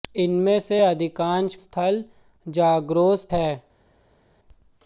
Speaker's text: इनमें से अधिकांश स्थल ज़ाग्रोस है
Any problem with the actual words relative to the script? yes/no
no